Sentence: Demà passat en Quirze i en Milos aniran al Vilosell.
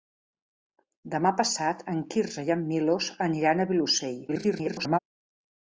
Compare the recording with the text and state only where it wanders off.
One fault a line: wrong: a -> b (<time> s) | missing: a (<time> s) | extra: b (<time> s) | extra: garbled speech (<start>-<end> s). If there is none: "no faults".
extra: garbled speech (4.3-5.0 s)